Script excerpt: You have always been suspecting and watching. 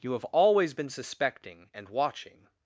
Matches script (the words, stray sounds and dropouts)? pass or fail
pass